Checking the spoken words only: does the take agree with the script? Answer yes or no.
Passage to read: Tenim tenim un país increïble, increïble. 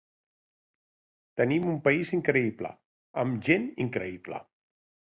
no